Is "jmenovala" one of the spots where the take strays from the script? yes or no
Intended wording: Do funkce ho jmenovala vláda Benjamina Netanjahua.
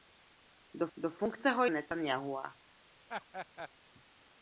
yes